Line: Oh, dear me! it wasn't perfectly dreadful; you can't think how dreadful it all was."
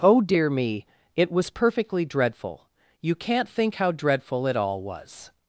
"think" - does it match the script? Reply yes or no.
yes